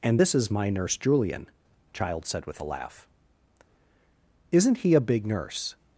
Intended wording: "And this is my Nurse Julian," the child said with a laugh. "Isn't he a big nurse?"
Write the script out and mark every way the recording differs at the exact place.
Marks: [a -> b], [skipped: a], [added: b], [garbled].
"And this is my Nurse Julian," [skipped: the] child said with a laugh. "Isn't he a big nurse?"